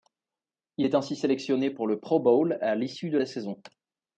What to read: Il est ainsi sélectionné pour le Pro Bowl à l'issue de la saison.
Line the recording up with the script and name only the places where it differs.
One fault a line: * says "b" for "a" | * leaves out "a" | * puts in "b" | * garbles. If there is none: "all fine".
all fine